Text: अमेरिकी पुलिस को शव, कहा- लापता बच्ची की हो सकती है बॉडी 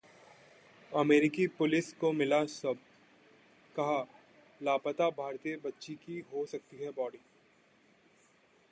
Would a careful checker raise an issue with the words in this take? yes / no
yes